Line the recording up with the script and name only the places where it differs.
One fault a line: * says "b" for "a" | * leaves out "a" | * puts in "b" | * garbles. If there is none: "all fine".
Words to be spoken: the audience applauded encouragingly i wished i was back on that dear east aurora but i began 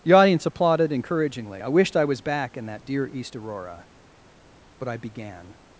* says "in" for "on"